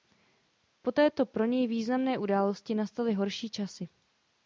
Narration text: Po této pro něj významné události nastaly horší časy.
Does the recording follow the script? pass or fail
pass